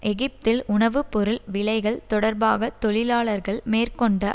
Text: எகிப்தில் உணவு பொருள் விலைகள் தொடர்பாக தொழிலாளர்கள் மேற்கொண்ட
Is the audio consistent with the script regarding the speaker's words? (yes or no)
yes